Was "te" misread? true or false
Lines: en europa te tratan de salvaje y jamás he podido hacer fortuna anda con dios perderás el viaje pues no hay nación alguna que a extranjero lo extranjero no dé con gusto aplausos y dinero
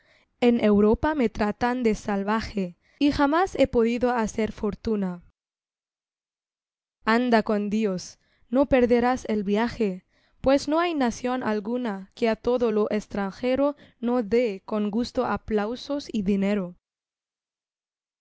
true